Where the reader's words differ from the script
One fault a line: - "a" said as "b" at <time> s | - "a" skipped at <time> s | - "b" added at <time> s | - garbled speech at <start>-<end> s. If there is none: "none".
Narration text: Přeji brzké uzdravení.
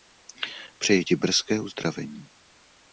- "ti" added at 1.0 s